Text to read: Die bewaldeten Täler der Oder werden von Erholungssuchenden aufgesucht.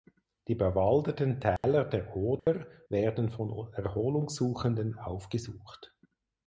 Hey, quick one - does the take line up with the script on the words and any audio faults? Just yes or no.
no